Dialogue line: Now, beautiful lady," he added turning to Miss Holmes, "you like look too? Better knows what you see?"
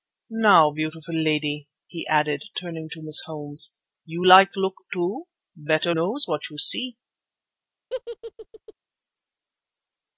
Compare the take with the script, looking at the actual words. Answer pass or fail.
pass